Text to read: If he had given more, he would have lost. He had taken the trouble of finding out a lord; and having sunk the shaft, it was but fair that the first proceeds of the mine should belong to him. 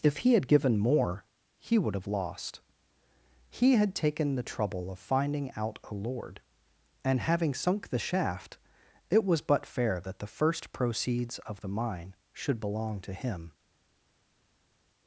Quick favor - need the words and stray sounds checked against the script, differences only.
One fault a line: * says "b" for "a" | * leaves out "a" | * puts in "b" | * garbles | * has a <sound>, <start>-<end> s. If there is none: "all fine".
all fine